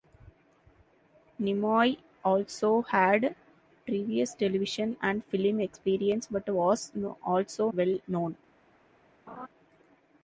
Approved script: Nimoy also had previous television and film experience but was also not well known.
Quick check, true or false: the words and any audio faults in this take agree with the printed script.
false